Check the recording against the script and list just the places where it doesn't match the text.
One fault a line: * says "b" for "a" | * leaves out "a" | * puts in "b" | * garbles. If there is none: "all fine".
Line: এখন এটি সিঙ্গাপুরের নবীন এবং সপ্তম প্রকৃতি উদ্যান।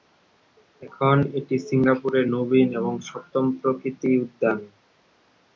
all fine